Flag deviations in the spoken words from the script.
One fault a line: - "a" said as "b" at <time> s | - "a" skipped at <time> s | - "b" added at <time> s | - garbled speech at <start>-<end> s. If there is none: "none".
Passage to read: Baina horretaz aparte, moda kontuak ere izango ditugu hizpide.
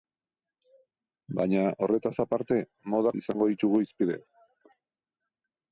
- "kontuak ere" skipped at 3.1 s